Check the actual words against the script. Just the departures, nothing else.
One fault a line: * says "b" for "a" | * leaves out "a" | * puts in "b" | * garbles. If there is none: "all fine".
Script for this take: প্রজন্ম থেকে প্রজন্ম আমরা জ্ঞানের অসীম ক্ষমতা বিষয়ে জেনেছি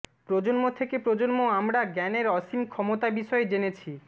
all fine